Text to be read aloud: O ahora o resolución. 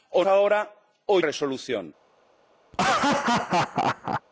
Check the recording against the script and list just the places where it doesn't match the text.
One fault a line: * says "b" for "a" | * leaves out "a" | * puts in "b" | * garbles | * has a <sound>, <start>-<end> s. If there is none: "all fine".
* has a laugh, 2.7-4.2 s